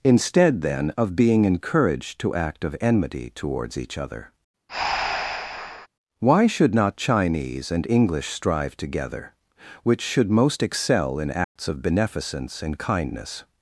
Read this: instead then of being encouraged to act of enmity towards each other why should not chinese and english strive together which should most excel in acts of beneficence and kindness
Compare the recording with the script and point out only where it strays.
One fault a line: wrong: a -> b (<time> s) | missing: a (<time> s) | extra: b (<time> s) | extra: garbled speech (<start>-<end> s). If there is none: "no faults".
no faults